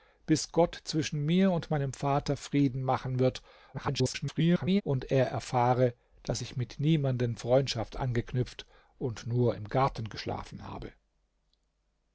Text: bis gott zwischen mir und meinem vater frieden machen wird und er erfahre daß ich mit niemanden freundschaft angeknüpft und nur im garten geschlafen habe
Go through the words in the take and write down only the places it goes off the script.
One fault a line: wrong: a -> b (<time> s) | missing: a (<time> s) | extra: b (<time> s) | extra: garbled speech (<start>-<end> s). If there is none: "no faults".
extra: garbled speech (3.7-4.8 s)